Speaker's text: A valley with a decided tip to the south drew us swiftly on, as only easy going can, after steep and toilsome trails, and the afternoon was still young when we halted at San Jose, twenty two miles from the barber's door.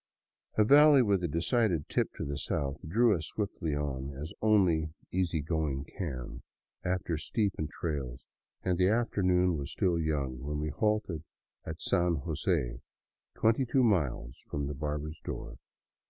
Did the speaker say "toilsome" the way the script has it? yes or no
no